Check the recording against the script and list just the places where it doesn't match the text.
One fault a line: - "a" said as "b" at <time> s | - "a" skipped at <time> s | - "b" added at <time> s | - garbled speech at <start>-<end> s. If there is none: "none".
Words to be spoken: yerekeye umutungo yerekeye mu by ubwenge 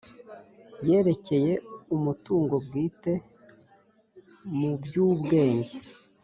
- "yerekeye" said as "bwite" at 2.6 s